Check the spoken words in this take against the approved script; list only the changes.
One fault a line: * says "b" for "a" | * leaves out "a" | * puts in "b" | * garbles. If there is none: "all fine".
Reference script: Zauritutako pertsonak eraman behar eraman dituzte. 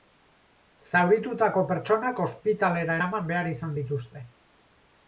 * puts in "ospitalera"
* says "izan" for "eraman"